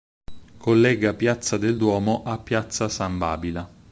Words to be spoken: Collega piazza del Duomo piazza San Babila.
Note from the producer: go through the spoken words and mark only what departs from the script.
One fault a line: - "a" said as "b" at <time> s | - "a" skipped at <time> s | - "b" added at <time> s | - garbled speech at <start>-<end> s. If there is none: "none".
- "a" added at 2.2 s